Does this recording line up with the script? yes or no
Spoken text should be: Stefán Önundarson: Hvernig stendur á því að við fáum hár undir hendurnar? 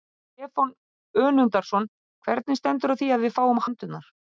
no